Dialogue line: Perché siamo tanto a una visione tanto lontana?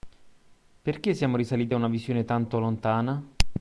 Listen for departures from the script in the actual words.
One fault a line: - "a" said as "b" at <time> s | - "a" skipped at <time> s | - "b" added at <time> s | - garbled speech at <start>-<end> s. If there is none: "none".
- "tanto" said as "risaliti" at 1.4 s